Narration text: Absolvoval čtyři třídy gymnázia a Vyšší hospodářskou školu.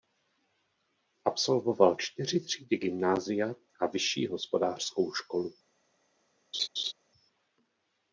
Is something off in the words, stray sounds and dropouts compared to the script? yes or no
yes